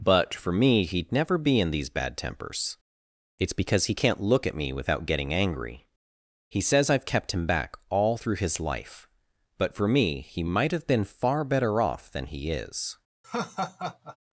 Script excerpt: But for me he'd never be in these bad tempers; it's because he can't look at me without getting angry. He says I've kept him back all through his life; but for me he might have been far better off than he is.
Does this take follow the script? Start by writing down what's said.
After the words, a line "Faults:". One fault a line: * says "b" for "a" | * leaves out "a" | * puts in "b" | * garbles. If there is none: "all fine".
But for me he'd never be in these bad tempers; it's because he can't look at me without getting angry. He says I've kept him back all through his life; but for me he might have been far better off than he is.
Faults:
all fine